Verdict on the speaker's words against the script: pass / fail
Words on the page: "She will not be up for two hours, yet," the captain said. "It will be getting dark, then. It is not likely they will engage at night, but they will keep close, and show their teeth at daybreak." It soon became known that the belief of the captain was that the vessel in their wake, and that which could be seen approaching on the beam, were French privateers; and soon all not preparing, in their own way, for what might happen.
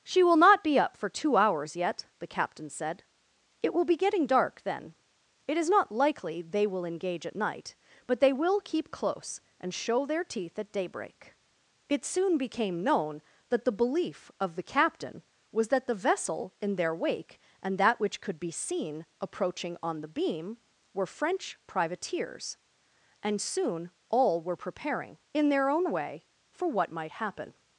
fail